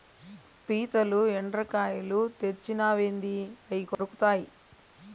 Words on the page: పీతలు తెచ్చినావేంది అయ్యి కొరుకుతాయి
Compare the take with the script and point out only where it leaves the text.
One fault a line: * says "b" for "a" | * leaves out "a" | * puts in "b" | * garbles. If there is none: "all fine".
* puts in "ఎండ్రకాయలు"